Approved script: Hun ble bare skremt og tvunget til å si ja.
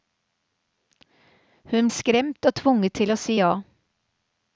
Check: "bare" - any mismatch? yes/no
yes